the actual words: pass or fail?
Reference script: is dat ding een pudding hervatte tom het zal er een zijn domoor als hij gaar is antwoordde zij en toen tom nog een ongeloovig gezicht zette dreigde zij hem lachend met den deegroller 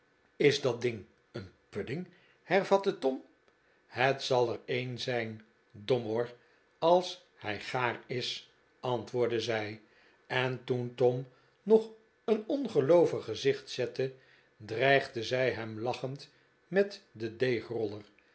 pass